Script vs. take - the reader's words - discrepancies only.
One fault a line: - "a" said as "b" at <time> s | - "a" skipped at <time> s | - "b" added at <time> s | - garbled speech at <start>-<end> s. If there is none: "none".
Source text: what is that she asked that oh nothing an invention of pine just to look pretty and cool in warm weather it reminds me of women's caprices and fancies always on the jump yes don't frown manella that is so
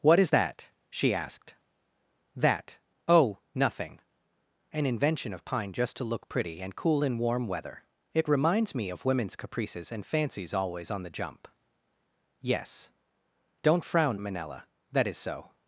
none